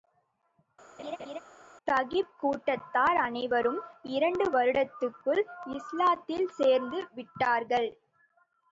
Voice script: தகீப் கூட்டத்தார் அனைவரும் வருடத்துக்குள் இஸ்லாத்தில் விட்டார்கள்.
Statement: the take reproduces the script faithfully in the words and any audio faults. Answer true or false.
false